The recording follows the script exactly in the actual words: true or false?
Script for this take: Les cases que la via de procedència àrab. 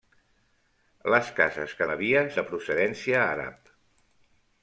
true